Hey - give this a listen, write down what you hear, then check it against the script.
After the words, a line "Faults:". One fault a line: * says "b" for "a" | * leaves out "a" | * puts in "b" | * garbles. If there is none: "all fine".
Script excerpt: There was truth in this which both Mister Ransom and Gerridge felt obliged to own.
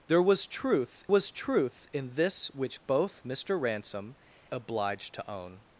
There was truth was truth in this which both Mister Ransom obliged to own.
Faults:
* puts in "was truth"
* leaves out "and Gerridge felt"